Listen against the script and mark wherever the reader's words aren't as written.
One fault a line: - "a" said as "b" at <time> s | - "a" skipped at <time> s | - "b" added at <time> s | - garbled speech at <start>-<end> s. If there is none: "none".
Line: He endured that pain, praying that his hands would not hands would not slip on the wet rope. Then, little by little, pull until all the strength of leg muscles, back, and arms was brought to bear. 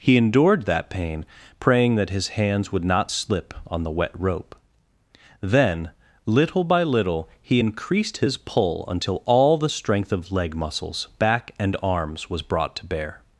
- "hands would not" skipped at 3.1 s
- "he increased his" added at 7.4 s